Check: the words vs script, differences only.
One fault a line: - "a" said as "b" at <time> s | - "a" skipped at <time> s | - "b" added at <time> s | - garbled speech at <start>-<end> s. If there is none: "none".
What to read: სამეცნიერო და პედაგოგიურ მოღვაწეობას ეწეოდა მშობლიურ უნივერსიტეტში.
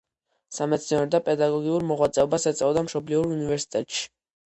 none